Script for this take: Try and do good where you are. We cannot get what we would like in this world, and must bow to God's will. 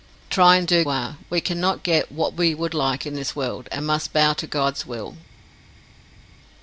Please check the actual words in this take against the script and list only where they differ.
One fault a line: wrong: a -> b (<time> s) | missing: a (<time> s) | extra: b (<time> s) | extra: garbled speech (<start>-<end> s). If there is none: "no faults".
missing: good where you (0.8 s)